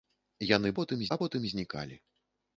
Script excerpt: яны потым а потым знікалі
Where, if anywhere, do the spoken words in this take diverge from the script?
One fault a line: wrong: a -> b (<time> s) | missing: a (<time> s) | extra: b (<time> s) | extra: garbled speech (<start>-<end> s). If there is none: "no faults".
no faults